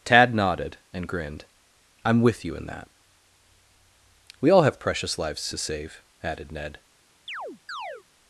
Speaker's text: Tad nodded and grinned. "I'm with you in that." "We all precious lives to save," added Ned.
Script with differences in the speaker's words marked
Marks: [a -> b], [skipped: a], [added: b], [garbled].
Tad nodded and grinned. "I'm with you in that." "We all [added: have] precious lives to save," added Ned.